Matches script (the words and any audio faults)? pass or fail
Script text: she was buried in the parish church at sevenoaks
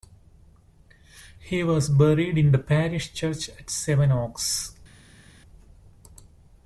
fail